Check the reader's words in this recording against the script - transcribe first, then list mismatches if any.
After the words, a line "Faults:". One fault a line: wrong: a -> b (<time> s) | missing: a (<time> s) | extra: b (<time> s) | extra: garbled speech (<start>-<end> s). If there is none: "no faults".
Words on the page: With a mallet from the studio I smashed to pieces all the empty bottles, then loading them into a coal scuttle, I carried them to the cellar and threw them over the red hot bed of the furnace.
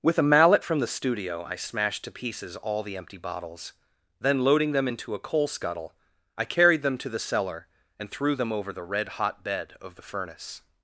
With a mallet from the studio I smashed to pieces all the empty bottles, then loading them into a coal scuttle, I carried them to the cellar and threw them over the red hot bed of the furnace.
Faults:
no faults